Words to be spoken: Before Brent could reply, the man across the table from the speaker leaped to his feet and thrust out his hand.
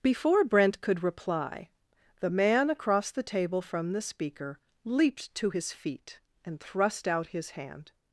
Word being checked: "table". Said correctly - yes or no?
yes